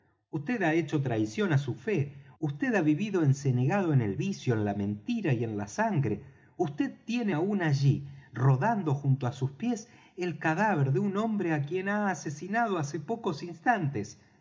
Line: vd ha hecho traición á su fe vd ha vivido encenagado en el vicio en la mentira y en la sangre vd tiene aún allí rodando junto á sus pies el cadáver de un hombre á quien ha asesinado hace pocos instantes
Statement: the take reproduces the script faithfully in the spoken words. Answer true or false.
true